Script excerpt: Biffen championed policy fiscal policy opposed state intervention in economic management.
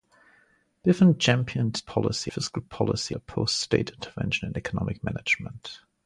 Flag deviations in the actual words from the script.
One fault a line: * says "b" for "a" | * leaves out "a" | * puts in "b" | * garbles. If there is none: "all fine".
all fine